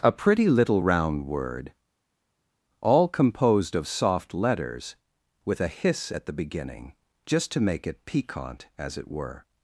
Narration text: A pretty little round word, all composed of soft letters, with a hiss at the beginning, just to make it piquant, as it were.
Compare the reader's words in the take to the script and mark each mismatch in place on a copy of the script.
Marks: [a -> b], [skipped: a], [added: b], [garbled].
A pretty little round word, all composed of soft letters, with a hiss at the beginning, just to make it piquant, as it were.